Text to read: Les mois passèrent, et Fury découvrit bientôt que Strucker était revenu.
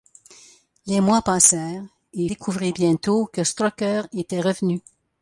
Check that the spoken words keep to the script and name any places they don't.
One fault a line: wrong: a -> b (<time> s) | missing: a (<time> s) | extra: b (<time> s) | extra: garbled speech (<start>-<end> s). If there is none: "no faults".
missing: Fury (2.3 s)